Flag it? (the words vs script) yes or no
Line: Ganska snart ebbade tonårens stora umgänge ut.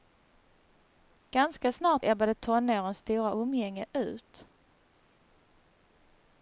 no